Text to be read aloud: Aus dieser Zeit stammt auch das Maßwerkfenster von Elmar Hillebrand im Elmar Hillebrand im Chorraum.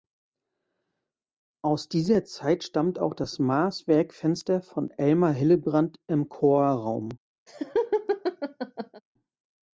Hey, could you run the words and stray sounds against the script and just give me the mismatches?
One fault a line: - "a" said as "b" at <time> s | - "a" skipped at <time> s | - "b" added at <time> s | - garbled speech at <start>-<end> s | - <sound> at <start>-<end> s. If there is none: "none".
- "Elmar Hillebrand im" skipped at 6.3 s
- laugh at 7.5-9.0 s